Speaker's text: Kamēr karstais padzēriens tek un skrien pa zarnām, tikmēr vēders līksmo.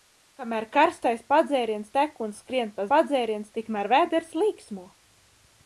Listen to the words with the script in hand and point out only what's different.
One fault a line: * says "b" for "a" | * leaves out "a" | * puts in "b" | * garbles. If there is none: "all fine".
* says "padzēriens" for "zarnām"